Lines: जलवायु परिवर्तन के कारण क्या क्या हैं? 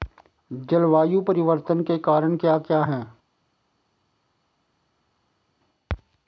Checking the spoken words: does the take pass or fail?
pass